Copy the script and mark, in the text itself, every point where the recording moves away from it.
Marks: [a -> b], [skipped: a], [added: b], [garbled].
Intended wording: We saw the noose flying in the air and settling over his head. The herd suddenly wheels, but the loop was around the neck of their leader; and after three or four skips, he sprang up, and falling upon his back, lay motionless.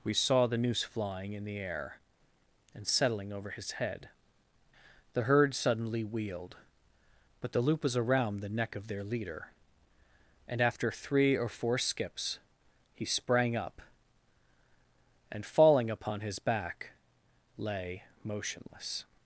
We saw the noose flying in the air and settling over his head. The herd suddenly [wheels, -> wheeled] but the loop was around the neck of their leader; and after three or four skips, he sprang up, and falling upon his back, lay motionless.